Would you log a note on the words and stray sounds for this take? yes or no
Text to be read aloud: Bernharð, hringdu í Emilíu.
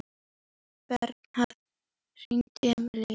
no